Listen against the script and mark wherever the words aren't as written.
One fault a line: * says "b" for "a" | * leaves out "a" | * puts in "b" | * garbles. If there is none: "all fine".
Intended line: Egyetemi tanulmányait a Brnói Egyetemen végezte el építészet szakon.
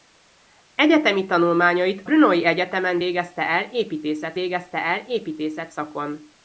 * leaves out "a"
* puts in "végezte el építészet"